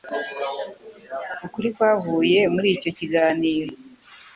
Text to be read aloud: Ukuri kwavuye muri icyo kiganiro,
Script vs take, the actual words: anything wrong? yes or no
no